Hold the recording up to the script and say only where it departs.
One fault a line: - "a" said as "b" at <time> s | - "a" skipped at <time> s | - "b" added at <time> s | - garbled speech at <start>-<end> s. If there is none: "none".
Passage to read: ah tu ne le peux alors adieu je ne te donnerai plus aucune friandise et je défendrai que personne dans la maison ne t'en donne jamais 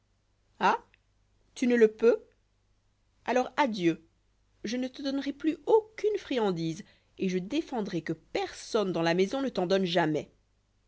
none